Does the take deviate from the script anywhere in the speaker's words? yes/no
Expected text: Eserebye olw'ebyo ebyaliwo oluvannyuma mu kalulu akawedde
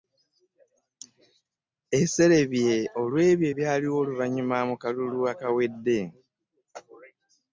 no